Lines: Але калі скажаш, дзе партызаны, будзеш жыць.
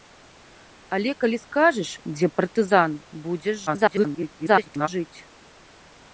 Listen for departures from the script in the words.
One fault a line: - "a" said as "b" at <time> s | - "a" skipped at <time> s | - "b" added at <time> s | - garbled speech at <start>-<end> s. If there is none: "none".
- garbled speech at 3.7-4.9 s